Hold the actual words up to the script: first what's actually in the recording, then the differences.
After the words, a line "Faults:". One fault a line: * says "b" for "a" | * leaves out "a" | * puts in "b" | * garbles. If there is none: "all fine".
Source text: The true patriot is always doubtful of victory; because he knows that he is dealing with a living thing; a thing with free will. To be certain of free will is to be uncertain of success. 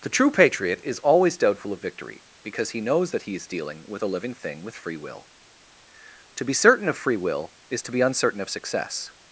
The true patriot is always doubtful of victory; because he knows that he is dealing with a living thing; with free will. To be certain of free will is to be uncertain of success.
Faults:
* leaves out "a thing"